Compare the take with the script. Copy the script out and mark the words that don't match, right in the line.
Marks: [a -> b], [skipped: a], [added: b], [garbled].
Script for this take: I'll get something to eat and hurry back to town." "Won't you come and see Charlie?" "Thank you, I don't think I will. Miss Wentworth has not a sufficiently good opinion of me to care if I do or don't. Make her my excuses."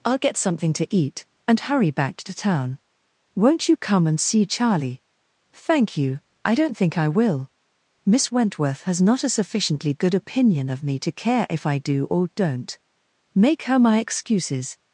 I'll get something to eat and hurry back to town." "Won't you come and see Charlie?" "Thank you, I don't think I will. Miss Wentworth has not a sufficiently good opinion of me to care if I do or don't. Make her my excuses."